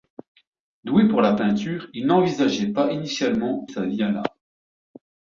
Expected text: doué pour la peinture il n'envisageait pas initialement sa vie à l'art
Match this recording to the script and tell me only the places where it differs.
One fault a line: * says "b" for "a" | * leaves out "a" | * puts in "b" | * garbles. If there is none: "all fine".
all fine